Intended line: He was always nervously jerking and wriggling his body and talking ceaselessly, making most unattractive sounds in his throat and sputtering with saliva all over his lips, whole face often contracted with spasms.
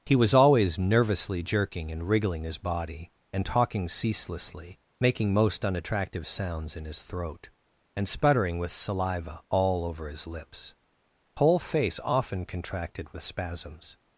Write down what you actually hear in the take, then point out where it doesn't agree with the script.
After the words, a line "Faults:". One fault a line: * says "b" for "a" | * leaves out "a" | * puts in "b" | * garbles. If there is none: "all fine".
He was always nervously jerking and wriggling his body and talking ceaselessly, making most unattractive sounds in his throat and sputtering with saliva all over his lips, whole face often contracted with spasms.
Faults:
all fine